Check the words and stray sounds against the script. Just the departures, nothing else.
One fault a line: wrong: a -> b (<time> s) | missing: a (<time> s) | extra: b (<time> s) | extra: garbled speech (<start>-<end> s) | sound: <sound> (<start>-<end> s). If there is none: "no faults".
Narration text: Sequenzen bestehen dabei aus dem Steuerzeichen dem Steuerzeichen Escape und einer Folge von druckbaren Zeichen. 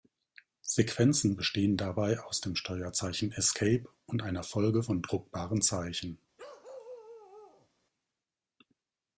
missing: dem Steuerzeichen (3.3 s)
sound: bark (6.4-7.7 s)